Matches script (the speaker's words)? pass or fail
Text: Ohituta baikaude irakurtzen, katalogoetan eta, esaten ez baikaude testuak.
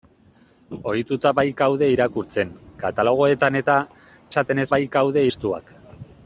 pass